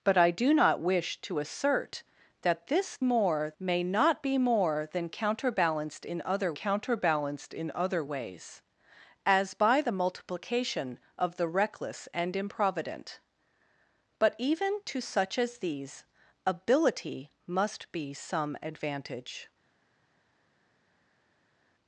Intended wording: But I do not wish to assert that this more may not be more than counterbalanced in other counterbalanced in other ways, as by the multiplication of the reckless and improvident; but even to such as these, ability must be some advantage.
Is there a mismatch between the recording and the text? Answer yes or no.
no